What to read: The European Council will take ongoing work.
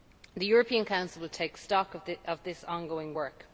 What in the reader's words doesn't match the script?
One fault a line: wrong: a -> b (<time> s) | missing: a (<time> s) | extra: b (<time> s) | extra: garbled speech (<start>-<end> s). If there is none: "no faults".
extra: stock of this (1.6 s)